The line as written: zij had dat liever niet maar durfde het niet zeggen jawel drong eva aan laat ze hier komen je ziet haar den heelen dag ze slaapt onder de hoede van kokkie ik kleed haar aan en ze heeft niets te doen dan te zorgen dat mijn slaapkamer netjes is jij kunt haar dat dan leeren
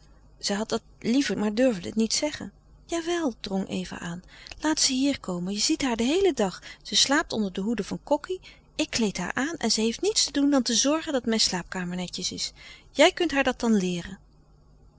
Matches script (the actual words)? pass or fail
fail